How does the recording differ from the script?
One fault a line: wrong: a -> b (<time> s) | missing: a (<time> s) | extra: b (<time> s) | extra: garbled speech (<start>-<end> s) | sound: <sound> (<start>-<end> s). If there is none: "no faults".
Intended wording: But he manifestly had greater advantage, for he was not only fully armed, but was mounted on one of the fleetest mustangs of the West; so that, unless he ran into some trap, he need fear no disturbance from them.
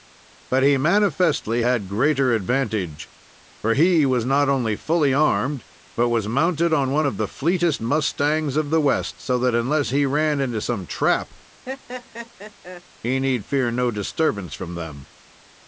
sound: laugh (11.7-12.8 s)